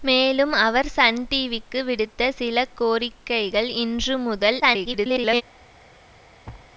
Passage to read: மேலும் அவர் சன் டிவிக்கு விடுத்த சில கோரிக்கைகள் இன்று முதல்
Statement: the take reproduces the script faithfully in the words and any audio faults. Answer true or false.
false